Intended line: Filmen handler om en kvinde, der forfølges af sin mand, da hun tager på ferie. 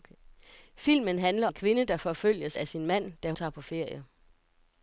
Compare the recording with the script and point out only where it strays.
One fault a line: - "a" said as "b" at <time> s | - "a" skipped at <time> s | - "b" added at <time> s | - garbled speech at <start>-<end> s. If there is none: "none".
- "om" skipped at 1.5 s
- "hun" skipped at 3.3 s